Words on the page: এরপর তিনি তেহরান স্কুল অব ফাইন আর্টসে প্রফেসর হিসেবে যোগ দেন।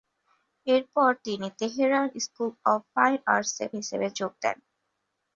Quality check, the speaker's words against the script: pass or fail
fail